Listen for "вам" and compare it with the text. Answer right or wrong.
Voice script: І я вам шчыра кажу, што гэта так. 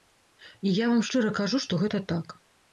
right